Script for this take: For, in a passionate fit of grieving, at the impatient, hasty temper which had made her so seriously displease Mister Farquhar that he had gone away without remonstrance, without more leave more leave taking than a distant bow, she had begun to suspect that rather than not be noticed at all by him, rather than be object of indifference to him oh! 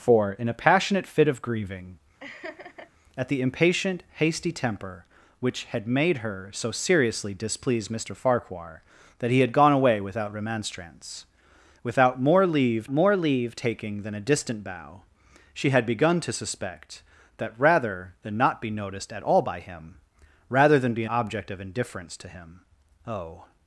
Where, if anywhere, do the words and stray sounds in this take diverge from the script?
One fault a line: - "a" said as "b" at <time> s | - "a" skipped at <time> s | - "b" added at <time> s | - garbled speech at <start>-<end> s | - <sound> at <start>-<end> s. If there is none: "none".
- laugh at 2.2-2.9 s